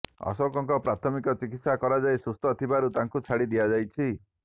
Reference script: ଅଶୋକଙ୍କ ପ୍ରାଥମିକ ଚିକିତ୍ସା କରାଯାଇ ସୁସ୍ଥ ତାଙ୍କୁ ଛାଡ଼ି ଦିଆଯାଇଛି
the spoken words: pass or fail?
fail